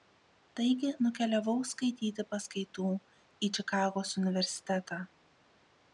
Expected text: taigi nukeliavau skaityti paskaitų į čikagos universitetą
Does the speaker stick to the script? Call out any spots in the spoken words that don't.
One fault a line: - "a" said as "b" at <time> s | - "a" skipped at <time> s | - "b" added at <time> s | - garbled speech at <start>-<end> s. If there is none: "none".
none